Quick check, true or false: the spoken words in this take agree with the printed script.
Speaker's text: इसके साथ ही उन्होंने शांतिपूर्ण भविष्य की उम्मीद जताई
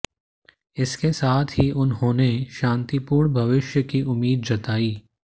true